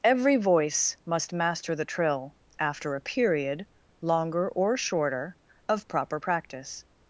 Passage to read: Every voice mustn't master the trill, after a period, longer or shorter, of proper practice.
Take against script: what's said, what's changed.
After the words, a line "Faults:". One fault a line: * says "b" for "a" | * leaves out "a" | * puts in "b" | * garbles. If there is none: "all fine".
Every voice must master the trill, after a period, longer or shorter, of proper practice.
Faults:
* says "must" for "mustn't"